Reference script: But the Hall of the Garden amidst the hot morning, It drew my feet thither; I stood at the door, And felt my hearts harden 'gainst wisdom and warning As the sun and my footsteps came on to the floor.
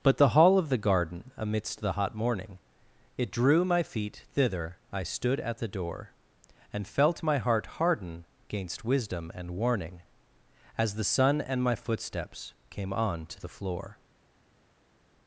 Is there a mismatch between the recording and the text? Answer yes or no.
yes